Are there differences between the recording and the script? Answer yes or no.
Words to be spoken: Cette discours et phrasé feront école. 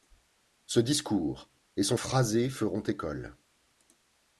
yes